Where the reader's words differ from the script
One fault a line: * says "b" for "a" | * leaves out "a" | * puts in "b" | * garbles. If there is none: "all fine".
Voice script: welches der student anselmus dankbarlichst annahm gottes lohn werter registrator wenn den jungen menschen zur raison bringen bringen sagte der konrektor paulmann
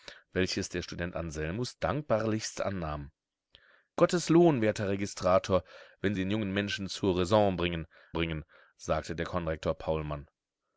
all fine